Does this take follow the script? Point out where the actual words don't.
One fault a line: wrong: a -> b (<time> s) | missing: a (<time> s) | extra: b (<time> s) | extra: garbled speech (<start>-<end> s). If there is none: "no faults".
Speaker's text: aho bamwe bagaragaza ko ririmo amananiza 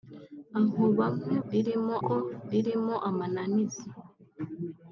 wrong: bagaragaza -> ririmo (1.5 s)